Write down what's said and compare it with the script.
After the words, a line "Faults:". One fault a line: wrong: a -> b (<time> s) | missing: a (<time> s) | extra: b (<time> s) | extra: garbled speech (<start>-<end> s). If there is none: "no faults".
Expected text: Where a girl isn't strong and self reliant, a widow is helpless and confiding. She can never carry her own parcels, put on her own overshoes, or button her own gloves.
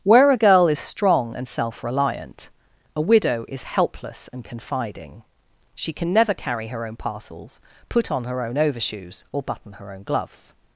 Where a girl is strong and self reliant, a widow is helpless and confiding. She can never carry her own parcels, put on her own overshoes, or button her own gloves.
Faults:
wrong: isn't -> is (0.7 s)